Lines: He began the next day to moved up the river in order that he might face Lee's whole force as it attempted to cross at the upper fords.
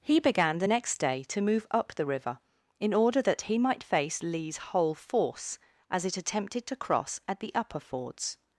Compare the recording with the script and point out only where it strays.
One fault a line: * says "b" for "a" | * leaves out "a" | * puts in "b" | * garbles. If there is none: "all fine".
* says "move" for "moved"